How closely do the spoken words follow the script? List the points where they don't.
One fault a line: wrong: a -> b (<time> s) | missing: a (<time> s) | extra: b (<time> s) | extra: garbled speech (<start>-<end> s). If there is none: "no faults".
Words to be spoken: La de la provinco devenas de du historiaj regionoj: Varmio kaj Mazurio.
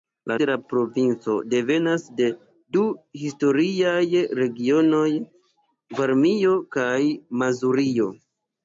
no faults